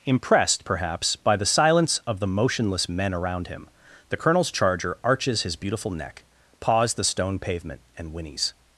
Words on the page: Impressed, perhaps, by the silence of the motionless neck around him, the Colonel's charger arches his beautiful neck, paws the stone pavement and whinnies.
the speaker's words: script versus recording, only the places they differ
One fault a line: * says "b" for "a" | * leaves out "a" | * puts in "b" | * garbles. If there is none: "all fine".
* says "men" for "neck"